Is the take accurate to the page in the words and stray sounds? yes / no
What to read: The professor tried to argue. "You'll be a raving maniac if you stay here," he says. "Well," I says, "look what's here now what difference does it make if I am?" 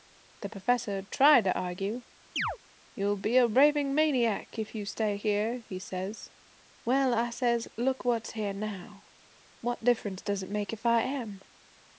no